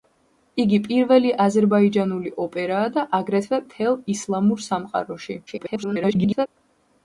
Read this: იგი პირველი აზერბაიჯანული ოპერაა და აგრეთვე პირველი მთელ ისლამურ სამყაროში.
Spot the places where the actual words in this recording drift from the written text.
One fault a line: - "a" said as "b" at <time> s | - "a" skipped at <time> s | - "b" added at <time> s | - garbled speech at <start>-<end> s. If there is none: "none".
- "პირველი" skipped at 3.6 s
- garbled speech at 5.5-6.5 s